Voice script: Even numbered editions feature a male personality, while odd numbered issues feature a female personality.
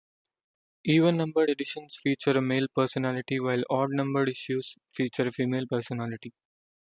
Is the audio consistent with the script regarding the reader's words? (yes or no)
yes